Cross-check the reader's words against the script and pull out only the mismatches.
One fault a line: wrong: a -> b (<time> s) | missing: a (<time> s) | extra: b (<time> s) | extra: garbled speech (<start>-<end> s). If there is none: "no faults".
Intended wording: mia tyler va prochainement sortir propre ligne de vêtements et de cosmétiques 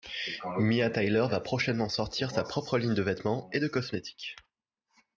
extra: sa (2.3 s)